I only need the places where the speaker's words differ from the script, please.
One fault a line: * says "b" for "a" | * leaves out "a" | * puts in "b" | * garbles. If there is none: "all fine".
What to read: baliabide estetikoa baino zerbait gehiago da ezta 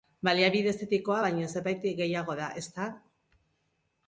all fine